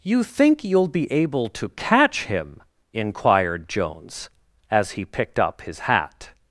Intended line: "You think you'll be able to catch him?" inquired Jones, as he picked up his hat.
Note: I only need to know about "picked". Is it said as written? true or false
true